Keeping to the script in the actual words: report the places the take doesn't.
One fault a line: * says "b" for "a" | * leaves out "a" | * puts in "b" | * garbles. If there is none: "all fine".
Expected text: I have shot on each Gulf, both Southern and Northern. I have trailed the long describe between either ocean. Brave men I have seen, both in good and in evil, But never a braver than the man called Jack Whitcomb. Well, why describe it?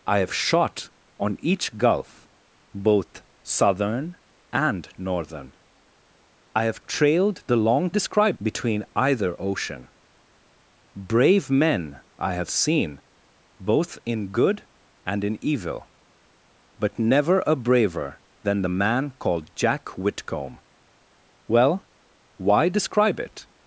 all fine